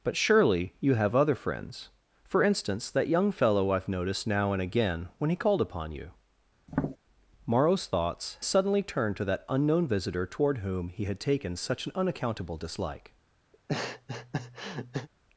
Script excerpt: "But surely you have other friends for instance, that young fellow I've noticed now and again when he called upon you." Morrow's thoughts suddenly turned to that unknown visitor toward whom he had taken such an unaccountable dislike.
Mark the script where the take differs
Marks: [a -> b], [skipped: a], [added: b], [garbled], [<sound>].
"But surely you have other friends for instance, that young fellow I've noticed now and again when he called upon you." [tap] Morrow's thoughts suddenly turned to that unknown visitor toward whom he had taken such an unaccountable dislike. [laugh]